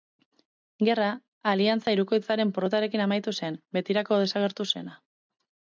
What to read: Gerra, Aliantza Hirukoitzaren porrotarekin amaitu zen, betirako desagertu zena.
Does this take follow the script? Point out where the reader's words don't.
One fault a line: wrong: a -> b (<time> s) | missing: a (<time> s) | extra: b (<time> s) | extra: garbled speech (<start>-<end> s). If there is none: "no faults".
no faults